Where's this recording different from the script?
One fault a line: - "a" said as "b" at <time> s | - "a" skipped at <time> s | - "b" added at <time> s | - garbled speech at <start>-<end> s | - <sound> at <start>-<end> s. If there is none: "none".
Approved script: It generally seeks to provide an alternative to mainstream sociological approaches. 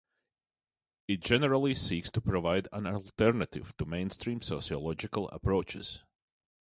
none